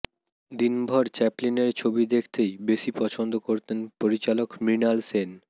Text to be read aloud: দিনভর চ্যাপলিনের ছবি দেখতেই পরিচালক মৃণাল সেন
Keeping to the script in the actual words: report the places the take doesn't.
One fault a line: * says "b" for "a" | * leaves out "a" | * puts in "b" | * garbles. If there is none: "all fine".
* puts in "বেশি পছন্দ করতেন"